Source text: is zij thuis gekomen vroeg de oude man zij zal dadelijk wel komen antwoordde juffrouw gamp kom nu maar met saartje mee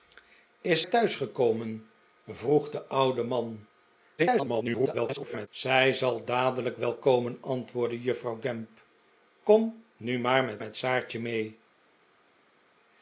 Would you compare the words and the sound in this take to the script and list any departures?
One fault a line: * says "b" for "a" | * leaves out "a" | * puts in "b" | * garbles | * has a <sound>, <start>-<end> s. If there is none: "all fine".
* leaves out "zij"
* garbles
* puts in "met"